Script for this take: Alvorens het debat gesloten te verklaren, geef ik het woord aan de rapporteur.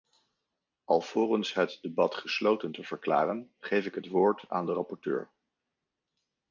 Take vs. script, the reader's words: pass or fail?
pass